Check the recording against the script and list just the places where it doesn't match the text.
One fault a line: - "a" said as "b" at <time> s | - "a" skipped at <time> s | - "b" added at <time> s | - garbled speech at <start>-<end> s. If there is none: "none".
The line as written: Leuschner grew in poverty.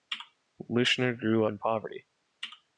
none